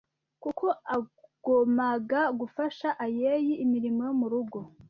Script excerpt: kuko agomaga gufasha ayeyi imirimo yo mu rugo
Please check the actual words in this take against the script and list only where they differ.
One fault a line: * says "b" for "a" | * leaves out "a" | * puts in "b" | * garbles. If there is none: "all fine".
all fine